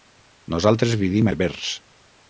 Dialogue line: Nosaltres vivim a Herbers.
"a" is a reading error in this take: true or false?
false